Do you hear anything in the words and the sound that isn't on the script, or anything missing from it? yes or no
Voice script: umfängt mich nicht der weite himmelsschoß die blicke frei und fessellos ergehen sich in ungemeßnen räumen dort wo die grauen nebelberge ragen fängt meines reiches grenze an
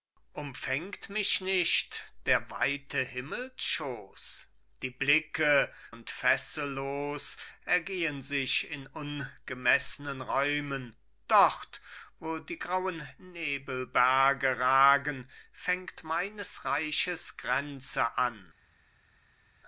yes